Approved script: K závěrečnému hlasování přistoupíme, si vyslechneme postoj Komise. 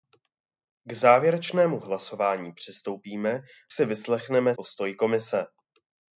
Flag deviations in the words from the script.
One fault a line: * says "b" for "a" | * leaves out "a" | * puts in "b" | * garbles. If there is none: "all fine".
all fine